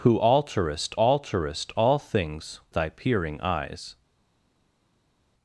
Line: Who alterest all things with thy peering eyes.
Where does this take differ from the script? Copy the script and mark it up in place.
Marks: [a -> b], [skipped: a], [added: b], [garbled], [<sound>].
Who alterest [added: alterest] all things [skipped: with] thy peering eyes.